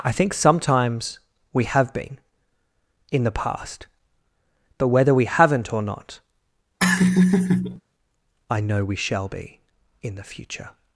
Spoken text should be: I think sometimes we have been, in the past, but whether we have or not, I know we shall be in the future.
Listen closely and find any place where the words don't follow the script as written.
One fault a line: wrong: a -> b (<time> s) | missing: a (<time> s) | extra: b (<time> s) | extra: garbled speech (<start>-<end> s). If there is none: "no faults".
wrong: have -> haven't (5.2 s)